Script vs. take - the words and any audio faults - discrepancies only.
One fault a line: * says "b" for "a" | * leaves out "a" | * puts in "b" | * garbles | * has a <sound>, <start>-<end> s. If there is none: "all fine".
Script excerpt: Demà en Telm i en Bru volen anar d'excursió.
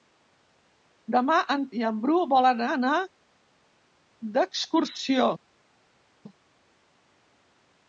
* leaves out "Telm"